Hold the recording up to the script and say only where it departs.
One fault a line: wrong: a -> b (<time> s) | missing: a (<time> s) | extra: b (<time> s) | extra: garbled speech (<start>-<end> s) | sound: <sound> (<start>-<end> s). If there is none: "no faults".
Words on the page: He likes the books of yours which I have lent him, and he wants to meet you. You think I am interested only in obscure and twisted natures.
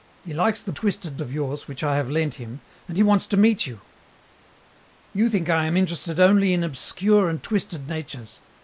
wrong: books -> twisted (0.7 s)